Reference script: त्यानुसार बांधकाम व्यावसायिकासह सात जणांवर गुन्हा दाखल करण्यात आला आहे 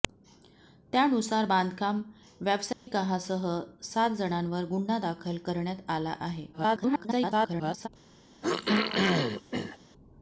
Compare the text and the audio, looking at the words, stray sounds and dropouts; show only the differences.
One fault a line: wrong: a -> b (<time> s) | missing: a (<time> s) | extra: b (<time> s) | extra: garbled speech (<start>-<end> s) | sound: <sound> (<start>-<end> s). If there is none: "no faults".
sound: dropout (2.7-2.9 s)
extra: garbled speech (6.5-7.9 s)
sound: throat clearing (8.4-9.8 s)